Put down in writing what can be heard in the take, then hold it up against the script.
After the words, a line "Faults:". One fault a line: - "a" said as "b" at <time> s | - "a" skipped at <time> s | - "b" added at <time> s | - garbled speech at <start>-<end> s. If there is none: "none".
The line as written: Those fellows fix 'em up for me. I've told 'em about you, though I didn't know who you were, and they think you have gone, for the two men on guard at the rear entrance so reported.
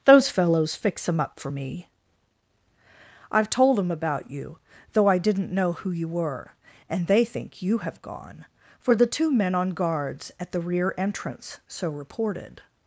Those fellows fix 'em up for me. I've told 'em about you, though I didn't know who you were, and they think you have gone, for the two men on guards at the rear entrance so reported.
Faults:
- "guard" said as "guards" at 9.7 s